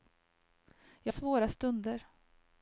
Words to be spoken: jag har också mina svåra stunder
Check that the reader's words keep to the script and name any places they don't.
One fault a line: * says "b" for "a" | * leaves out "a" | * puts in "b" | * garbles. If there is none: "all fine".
* leaves out "har också mina"